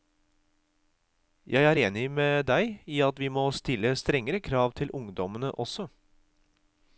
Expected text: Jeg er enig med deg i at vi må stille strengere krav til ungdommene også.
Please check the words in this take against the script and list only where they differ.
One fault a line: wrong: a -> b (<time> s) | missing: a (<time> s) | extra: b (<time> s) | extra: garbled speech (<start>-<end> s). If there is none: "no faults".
no faults